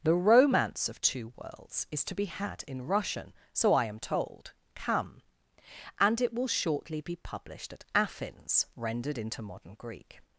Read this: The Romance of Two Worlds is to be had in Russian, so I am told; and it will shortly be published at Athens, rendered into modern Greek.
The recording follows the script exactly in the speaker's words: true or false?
false